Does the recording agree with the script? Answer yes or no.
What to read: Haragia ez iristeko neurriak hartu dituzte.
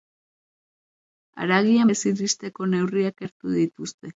yes